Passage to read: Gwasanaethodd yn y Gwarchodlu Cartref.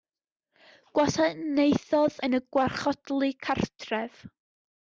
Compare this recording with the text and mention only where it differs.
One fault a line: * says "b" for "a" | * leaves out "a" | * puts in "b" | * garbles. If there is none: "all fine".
all fine